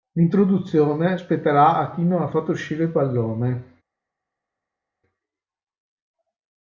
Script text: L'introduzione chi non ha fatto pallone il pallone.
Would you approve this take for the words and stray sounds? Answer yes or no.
no